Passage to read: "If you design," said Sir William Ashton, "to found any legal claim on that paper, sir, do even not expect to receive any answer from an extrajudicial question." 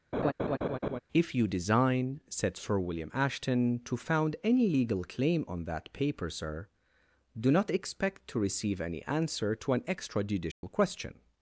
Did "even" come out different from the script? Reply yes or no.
yes